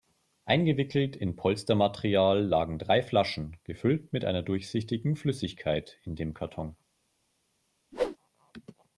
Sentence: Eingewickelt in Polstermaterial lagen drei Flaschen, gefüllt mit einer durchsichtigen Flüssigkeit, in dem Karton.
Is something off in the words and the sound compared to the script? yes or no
yes